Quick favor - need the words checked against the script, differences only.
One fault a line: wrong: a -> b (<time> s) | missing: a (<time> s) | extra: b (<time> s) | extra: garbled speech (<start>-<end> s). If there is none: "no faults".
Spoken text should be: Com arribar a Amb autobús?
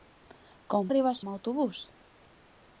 no faults